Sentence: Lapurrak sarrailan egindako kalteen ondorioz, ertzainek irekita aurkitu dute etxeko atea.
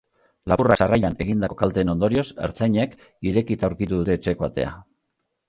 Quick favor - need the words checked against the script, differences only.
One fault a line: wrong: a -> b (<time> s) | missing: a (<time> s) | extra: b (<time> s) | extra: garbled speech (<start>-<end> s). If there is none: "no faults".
no faults